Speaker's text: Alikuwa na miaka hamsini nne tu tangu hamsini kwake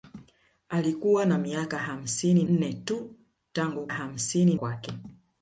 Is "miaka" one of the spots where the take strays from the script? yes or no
no